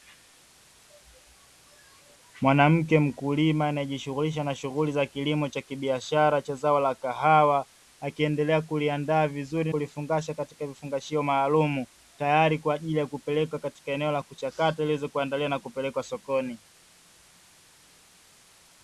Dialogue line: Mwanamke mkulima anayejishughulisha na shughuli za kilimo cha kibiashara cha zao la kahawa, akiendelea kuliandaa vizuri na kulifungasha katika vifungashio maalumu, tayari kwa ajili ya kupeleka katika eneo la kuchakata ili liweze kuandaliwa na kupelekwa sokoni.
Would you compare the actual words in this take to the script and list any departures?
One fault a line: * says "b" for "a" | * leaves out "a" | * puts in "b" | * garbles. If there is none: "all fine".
* leaves out "na"